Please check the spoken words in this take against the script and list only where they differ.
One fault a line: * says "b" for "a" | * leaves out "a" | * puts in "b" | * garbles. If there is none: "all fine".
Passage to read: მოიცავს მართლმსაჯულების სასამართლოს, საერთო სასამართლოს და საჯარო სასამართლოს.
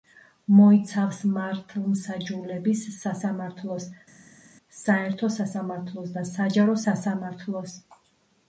all fine